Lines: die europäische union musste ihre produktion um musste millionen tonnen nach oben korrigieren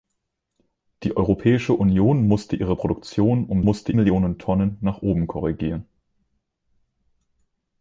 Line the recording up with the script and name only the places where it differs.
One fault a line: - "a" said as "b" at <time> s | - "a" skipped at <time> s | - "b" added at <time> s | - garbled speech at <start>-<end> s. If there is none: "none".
none